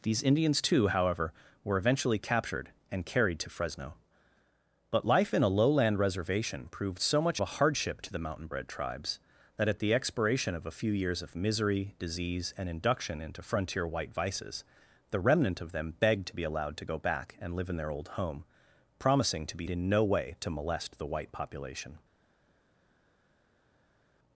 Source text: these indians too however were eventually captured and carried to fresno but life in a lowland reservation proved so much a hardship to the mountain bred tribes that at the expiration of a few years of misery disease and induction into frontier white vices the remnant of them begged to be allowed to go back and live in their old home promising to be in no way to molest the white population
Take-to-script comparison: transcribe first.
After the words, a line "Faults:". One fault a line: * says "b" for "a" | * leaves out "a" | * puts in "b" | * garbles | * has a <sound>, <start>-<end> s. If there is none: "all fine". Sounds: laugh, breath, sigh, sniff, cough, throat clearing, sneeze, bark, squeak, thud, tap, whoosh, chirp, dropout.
these indians too however were eventually captured and carried to fresno but life in a lowland reservation proved so much a hardship to the mountain bred tribes that at the expiration of a few years of misery disease and induction into frontier white vices the remnant of them begged to be allowed to go back and live in their old home promising to be in no way to molest the white population
Faults:
all fine